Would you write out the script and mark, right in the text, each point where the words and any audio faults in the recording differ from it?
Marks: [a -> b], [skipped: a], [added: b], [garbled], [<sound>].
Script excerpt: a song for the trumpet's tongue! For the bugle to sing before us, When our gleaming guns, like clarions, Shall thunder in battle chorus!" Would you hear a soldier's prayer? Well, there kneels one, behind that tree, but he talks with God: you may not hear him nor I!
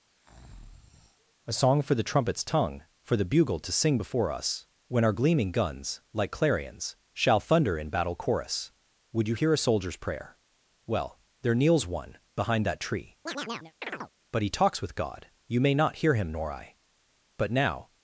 [breath] a song for the trumpet's tongue! For the bugle to sing before us, When our gleaming guns, like clarions, Shall thunder in battle chorus!" Would you hear a soldier's prayer? Well, there kneels one, behind that tree, [chirp] but he talks with God: you may not hear him nor I! [added: But now]